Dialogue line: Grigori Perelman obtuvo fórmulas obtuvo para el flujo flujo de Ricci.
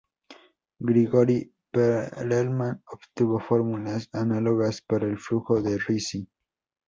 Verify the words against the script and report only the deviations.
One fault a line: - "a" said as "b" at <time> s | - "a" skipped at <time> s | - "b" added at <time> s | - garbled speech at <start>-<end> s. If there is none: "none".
- "obtuvo" said as "análogas" at 4.1 s
- "flujo" skipped at 5.6 s